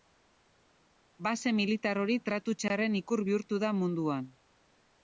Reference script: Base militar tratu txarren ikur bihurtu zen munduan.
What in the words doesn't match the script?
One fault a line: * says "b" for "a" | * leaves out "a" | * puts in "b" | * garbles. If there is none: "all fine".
* puts in "hori"
* says "da" for "zen"